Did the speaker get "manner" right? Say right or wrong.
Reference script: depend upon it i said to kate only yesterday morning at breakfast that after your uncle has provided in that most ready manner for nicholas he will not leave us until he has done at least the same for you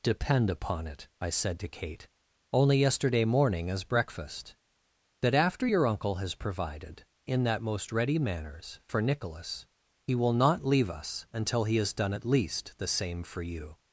wrong